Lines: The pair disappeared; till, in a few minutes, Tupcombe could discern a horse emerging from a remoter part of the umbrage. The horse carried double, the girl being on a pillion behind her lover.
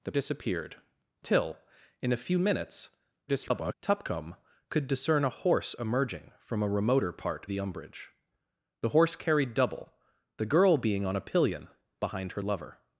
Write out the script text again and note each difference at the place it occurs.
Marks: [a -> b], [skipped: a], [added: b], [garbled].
The [skipped: pair] disappeared; till, in a few minutes, [garbled] Tupcombe could discern a horse emerging from a remoter part [skipped: of] the umbrage. The horse carried double, the girl being on a pillion behind her lover.